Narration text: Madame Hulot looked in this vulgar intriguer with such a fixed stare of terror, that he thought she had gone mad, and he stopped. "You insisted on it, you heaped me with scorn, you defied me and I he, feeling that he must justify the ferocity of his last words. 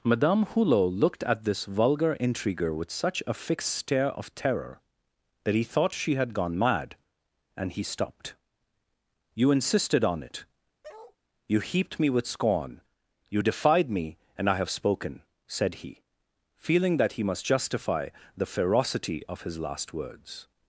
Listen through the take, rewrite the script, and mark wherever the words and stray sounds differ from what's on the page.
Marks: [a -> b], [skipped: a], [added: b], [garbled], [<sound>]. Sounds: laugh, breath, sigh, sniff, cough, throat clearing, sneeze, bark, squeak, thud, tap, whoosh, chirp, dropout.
Madame Hulot looked [in -> at] this vulgar intriguer with such a fixed stare of terror, that he thought she had gone mad, and he stopped. "You insisted on it, [bark] you heaped me with scorn, you defied me and I [added: have spoken said] he, feeling that he must justify the ferocity of his last words.